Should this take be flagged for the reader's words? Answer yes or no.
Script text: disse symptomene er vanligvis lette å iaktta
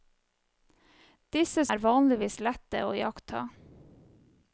yes